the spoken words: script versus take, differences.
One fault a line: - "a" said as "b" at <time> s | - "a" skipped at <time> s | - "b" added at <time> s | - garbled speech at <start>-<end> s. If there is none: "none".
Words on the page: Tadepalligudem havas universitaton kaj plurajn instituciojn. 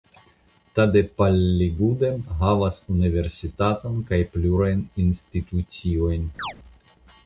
none